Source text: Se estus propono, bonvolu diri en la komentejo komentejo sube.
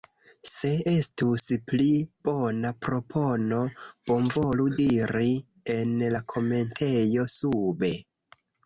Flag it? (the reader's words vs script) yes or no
yes